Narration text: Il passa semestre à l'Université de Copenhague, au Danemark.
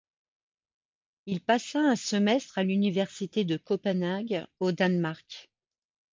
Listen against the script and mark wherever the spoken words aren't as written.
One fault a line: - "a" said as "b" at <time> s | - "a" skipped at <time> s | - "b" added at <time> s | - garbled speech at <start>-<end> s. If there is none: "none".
- "un" added at 1.8 s